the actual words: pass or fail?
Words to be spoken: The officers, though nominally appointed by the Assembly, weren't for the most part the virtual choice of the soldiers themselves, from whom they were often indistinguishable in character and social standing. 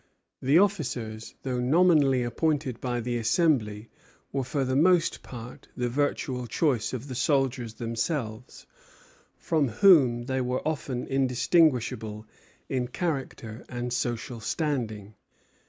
fail